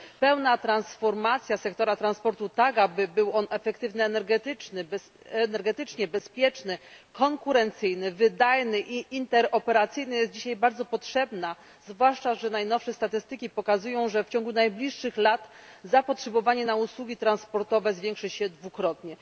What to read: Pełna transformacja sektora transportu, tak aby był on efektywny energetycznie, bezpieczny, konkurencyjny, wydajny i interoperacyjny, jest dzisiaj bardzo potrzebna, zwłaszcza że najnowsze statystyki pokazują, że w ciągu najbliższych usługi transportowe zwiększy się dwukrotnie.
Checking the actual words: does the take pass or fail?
fail